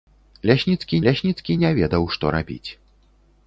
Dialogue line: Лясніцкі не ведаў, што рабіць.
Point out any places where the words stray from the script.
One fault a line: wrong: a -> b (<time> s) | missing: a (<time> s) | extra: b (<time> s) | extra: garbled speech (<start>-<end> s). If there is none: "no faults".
extra: лясніцкі (1.1 s)